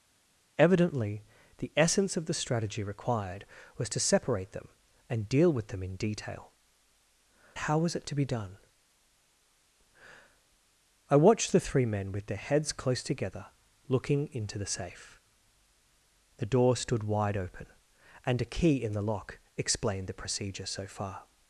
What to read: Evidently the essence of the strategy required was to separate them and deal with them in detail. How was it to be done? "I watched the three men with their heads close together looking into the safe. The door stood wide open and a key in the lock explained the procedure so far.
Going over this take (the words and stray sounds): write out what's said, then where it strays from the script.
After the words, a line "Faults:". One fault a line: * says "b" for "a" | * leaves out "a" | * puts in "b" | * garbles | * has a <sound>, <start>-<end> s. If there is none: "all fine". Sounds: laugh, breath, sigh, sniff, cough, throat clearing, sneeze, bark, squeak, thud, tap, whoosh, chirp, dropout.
Evidently the essence of the strategy required was to separate them and deal with them in detail. How was it to be done? "I watched the three men with their heads close together looking into the safe. The door stood wide open and a key in the lock explained the procedure so far.
Faults:
all fine